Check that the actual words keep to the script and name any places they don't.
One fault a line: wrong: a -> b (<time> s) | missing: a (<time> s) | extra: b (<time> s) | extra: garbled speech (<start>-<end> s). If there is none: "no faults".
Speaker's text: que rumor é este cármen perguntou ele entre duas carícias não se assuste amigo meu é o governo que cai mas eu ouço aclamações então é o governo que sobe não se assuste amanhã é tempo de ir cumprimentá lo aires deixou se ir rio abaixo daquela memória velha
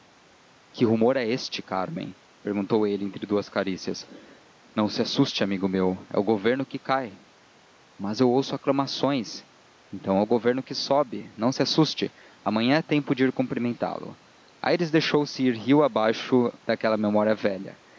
no faults